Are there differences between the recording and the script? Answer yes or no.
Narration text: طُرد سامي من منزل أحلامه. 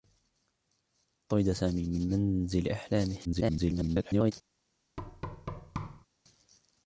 yes